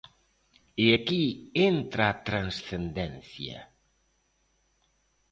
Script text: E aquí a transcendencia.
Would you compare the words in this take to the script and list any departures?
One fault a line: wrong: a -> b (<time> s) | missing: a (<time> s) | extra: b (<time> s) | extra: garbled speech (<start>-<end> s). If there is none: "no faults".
extra: entra (1.7 s)